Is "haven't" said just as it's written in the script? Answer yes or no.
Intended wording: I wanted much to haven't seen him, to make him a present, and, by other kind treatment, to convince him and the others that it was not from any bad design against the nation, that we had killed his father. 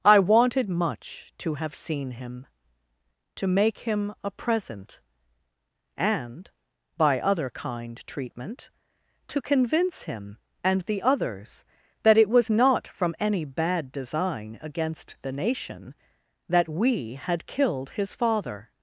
no